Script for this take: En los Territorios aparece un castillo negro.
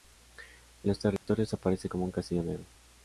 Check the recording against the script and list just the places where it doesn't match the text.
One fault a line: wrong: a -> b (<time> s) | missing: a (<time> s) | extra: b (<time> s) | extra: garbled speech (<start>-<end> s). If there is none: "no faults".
extra: como (1.9 s)